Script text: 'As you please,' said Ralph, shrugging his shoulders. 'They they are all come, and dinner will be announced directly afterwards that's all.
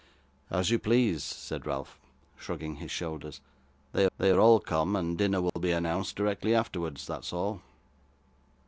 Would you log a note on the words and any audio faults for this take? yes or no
yes